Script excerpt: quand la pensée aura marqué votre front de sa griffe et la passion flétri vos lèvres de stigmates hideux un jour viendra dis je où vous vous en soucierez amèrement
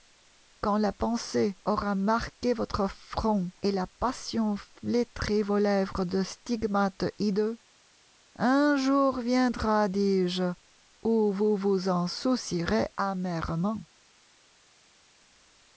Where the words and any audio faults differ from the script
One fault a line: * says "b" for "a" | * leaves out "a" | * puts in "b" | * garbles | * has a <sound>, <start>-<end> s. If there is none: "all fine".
* leaves out "de sa griffe"